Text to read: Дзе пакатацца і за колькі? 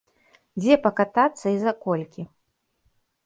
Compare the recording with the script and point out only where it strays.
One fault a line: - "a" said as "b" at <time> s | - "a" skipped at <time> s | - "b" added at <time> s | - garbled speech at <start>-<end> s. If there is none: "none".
none